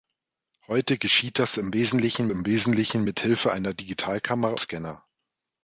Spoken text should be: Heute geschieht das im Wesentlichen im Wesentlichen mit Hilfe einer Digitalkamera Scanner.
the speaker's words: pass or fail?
pass